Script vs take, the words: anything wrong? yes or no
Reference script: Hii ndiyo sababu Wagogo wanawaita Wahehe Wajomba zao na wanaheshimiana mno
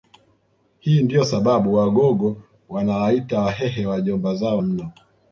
yes